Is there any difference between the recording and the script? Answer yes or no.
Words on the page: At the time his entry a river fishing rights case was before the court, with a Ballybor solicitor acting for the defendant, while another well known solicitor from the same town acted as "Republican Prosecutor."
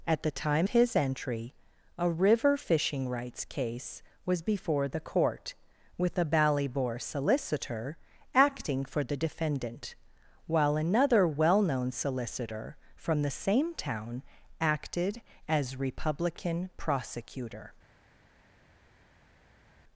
no